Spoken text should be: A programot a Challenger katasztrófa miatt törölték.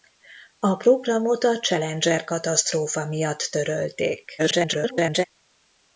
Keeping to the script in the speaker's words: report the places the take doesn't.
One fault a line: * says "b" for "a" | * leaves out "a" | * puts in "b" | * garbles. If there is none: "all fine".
* garbles